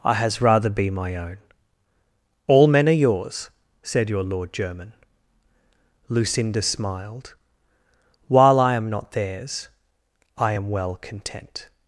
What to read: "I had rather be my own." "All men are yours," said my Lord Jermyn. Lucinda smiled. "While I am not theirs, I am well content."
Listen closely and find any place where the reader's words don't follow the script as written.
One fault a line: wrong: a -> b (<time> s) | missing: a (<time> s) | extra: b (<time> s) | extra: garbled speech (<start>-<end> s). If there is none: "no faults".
wrong: had -> has (0.1 s)
wrong: my -> your (4.1 s)